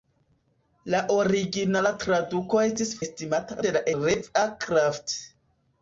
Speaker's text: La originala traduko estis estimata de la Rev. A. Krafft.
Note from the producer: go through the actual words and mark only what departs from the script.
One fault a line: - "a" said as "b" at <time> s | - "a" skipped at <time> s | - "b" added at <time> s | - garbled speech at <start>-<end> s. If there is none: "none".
none